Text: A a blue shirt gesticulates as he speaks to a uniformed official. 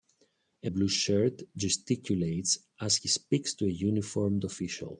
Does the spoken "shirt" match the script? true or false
true